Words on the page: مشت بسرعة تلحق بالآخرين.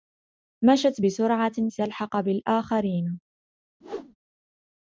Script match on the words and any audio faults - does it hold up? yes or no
no